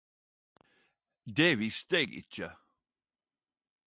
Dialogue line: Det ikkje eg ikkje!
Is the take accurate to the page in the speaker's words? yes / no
no